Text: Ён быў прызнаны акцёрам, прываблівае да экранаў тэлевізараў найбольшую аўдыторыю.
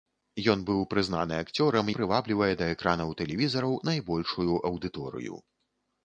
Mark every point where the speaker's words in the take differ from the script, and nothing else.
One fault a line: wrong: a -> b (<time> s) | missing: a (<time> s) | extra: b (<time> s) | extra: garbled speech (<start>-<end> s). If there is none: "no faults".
no faults